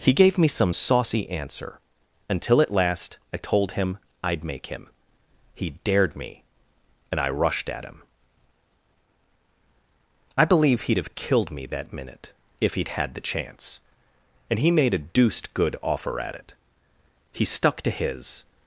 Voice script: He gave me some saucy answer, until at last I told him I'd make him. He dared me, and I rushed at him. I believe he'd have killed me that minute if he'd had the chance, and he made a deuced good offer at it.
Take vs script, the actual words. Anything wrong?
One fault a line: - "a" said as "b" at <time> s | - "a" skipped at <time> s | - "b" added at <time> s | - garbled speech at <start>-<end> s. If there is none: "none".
- "He stuck to his" added at 17.3 s